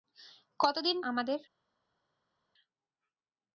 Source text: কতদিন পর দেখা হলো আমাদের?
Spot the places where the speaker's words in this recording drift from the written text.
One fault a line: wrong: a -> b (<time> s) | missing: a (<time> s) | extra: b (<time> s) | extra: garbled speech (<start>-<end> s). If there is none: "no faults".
missing: পর দেখা হলো (1.0 s)